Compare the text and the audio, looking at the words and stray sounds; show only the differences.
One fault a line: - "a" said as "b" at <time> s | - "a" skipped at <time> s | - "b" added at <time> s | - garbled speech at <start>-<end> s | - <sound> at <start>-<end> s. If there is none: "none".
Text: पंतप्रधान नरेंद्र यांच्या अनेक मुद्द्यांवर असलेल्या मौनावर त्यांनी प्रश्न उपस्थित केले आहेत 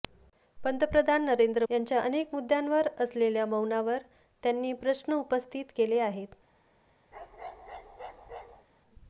- bark at 7.1-8.7 s